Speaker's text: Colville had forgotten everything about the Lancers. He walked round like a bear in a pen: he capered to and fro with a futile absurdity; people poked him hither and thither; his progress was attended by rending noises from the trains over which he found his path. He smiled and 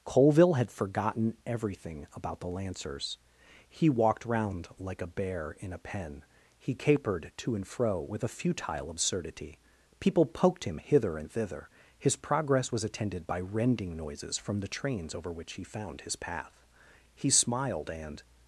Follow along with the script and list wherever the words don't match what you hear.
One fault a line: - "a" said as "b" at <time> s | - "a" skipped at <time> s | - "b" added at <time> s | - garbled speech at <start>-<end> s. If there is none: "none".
none